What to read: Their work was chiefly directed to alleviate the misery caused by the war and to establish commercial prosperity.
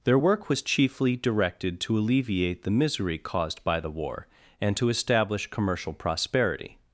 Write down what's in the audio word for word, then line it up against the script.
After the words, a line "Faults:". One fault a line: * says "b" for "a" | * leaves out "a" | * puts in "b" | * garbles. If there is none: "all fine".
Their work was chiefly directed to alleviate the misery caused by the war and to establish commercial prosperity.
Faults:
all fine